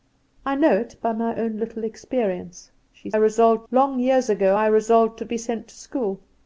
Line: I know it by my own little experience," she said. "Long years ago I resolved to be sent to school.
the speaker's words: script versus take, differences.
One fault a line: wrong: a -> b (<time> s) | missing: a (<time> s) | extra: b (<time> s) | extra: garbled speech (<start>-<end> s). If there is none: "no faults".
wrong: said -> resolved (3.2 s)